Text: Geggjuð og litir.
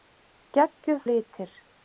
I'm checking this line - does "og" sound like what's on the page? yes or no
yes